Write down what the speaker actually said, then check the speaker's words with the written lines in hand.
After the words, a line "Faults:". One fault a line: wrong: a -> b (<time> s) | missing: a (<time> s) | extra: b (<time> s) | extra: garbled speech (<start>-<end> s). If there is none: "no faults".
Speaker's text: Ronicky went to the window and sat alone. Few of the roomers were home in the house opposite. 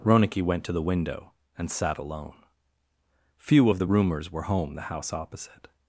Ronicky went to the window and sat alone. Few of the roomers were home the house opposite.
Faults:
missing: in (4.7 s)